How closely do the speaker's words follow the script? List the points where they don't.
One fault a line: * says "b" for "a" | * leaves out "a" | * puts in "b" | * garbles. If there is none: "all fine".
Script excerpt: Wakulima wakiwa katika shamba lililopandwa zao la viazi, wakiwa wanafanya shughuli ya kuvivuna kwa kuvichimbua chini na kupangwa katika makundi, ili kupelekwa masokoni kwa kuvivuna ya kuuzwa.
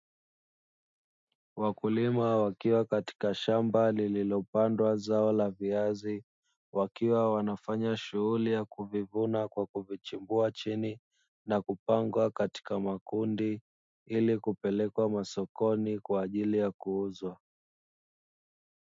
* says "ajili" for "kuvivuna"